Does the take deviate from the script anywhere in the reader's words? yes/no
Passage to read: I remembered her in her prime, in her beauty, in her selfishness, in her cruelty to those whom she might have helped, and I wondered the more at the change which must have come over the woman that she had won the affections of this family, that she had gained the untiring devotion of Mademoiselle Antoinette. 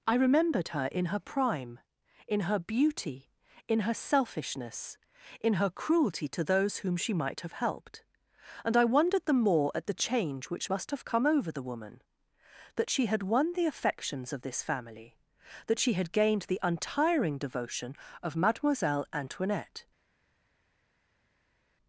no